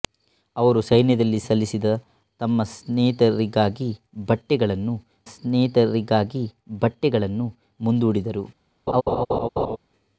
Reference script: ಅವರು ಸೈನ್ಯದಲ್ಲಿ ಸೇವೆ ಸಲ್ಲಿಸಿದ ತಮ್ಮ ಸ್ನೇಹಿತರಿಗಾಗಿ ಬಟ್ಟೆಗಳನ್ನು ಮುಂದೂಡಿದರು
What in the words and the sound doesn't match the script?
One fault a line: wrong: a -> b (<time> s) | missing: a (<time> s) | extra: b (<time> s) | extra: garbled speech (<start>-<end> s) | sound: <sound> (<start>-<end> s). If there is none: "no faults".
missing: ಸೇವೆ (1.4 s)
extra: ಸ್ನೇಹಿತರಿಗಾಗಿ ಬಟ್ಟೆಗಳನ್ನು (5.3 s)
sound: laugh (8.9-9.8 s)